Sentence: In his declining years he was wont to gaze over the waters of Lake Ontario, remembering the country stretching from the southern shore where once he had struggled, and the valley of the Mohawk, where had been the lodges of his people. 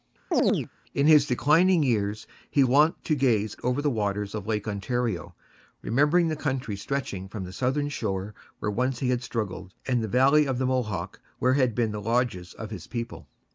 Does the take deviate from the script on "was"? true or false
true